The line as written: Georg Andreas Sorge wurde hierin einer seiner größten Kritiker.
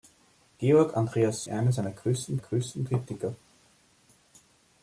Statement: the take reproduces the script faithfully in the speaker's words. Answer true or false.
false